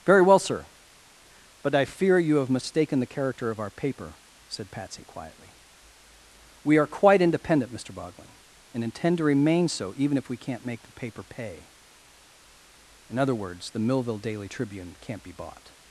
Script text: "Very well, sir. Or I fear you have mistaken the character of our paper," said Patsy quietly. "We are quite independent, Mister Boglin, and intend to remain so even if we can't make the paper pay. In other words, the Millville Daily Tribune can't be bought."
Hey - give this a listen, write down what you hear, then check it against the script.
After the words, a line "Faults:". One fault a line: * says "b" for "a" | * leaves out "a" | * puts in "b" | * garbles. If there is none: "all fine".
"Very well, sir. But I fear you have mistaken the character of our paper," said Patsy quietly. "We are quite independent, Mister Boglin, and intend to remain so even if we can't make the paper pay. In other words, the Millville Daily Tribune can't be bought."
Faults:
* says "But" for "Or"